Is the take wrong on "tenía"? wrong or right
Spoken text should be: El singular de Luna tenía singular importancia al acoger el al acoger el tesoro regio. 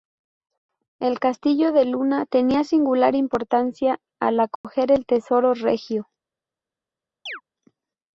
right